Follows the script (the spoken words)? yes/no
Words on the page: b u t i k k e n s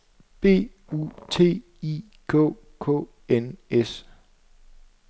no